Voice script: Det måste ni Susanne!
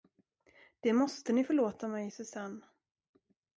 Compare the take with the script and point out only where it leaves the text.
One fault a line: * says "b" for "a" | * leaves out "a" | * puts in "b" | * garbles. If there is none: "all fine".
* puts in "förlåta mig"